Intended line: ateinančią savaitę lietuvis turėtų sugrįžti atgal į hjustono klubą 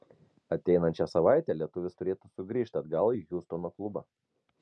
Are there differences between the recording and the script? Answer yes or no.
no